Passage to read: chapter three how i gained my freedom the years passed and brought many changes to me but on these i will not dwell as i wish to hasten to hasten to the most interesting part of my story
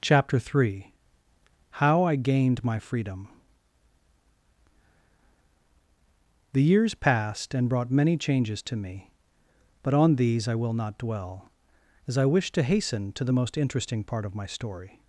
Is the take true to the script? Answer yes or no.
no